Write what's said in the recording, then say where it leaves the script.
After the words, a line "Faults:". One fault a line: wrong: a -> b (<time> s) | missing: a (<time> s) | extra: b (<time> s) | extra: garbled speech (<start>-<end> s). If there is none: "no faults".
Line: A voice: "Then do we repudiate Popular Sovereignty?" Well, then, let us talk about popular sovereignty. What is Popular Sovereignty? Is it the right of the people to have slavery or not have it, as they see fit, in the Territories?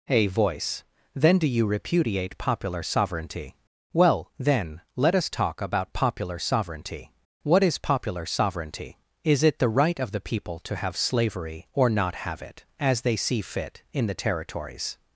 A voice: "Then do you repudiate Popular Sovereignty?" Well, then, let us talk about popular sovereignty. What is Popular Sovereignty? Is it the right of the people to have slavery or not have it, as they see fit, in the Territories?
Faults:
wrong: we -> you (1.4 s)